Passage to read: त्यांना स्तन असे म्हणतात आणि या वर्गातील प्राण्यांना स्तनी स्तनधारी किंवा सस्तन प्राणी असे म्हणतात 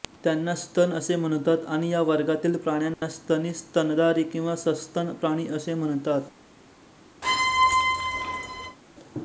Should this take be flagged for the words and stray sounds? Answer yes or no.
yes